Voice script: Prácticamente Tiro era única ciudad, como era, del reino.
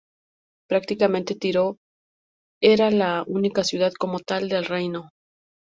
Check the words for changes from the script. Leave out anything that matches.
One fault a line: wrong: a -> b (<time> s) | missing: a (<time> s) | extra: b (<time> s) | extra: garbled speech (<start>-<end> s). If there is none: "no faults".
extra: la (2.9 s)
wrong: era -> tal (4.2 s)